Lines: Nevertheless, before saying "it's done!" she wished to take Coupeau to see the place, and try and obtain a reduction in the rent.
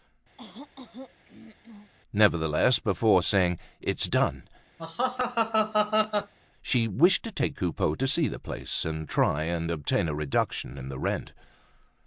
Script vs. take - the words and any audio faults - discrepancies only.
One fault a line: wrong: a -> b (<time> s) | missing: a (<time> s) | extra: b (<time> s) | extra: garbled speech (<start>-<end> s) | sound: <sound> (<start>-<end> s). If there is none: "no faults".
sound: throat clearing (0.4-1.9 s)
sound: laugh (4.8-6.3 s)